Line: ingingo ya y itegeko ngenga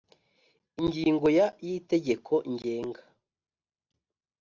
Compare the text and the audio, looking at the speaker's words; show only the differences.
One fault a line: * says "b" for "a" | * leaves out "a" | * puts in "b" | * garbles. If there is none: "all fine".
all fine